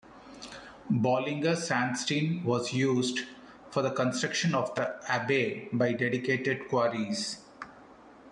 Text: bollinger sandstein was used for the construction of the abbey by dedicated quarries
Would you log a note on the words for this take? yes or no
no